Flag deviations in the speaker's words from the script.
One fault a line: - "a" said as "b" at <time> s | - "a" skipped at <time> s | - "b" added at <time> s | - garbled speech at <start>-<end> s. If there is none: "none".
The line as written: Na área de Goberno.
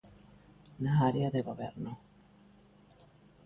none